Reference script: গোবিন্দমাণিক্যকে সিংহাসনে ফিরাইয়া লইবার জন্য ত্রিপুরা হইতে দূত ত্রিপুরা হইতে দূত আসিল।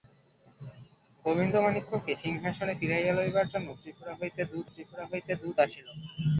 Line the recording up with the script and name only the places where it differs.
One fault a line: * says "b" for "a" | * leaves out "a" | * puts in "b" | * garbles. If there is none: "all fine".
all fine